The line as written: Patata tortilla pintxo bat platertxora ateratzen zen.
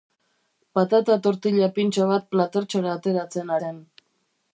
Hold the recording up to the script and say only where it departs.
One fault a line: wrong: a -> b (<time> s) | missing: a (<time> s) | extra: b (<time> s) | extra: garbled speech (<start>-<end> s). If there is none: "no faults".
no faults